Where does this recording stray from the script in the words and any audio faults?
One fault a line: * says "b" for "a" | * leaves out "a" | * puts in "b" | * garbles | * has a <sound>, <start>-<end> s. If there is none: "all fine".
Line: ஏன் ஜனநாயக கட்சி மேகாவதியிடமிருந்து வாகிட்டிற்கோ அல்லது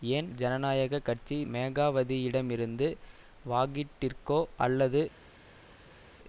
all fine